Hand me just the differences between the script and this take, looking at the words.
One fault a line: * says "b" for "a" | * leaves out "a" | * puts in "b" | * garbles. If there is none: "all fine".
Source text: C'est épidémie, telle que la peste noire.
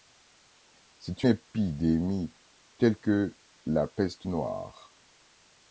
all fine